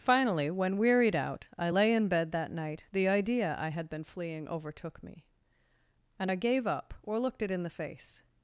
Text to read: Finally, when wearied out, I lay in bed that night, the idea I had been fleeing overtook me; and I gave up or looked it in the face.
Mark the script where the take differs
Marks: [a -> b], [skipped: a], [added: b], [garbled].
Finally, when wearied out, I lay in bed that night, the idea I had been fleeing overtook me; and I gave up or looked it in the face.